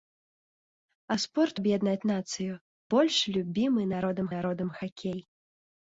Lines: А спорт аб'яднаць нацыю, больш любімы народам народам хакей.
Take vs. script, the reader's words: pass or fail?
pass